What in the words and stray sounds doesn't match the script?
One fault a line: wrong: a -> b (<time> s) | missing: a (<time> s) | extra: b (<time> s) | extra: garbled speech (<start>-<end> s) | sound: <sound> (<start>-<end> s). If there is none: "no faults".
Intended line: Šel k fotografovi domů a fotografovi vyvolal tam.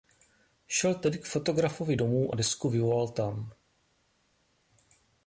extra: tedy (0.9 s)
wrong: fotografovi -> desku (2.3 s)